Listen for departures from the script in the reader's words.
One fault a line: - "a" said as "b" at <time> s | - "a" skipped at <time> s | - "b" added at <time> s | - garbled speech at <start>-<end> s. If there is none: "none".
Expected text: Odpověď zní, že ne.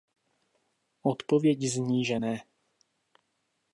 none